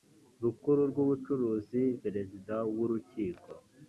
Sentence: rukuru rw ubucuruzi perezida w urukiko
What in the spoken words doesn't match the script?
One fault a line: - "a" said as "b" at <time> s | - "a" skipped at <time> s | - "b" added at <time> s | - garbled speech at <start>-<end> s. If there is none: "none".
none